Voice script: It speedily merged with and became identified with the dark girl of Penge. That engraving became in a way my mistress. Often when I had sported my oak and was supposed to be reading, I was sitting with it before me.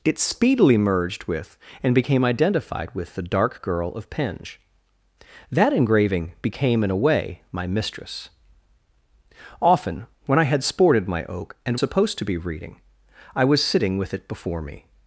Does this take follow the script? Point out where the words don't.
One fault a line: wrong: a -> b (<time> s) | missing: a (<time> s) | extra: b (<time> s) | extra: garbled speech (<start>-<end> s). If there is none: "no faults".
missing: was (11.8 s)